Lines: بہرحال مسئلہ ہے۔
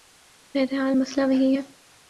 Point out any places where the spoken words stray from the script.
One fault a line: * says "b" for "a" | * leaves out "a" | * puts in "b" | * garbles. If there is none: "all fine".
* puts in "وہی"